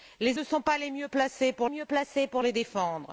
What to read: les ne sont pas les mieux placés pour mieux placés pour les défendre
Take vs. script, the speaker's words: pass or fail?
pass